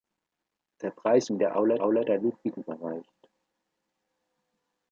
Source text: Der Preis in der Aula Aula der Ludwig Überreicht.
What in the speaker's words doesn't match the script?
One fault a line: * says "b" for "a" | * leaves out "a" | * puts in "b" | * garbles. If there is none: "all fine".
all fine